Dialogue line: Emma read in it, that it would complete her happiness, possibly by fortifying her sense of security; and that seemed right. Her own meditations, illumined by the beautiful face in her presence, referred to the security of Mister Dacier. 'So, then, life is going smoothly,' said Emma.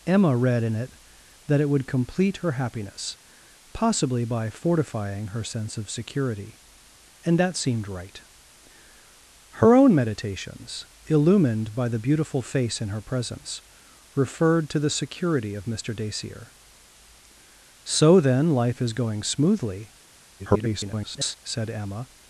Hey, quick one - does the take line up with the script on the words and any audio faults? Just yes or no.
no